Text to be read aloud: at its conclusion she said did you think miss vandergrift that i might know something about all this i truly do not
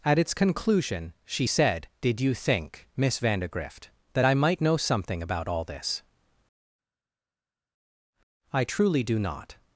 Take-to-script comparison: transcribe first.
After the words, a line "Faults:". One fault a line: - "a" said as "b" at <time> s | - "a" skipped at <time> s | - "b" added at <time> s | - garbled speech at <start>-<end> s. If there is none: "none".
at its conclusion she said did you think miss vandergrift that i might know something about all this i truly do not
Faults:
none